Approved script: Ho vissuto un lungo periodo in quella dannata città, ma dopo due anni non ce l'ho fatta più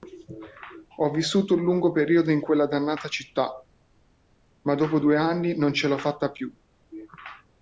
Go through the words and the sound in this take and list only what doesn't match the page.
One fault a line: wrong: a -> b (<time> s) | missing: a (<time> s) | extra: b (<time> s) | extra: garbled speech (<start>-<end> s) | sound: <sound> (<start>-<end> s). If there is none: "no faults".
no faults